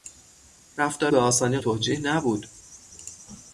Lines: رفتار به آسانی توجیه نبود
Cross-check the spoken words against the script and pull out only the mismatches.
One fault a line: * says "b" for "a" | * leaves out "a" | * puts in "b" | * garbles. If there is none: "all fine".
all fine